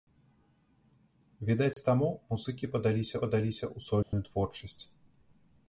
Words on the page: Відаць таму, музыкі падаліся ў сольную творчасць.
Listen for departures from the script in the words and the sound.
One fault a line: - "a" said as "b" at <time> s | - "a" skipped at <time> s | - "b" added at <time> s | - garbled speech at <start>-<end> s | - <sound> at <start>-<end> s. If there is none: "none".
- dropout at 1.7-1.8 s
- "падаліся" added at 3.3 s
- dropout at 4.0-4.1 s